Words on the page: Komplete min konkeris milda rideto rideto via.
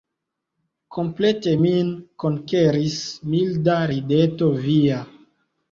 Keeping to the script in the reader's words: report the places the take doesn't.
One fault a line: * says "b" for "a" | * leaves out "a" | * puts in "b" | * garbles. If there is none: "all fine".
* leaves out "rideto"